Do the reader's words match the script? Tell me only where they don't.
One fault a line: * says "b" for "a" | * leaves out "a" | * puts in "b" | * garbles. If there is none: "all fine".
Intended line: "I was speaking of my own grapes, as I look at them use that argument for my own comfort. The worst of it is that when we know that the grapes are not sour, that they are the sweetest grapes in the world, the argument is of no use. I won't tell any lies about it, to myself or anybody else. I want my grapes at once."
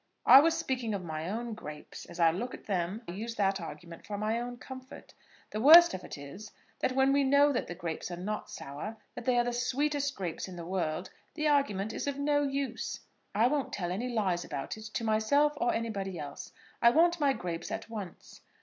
all fine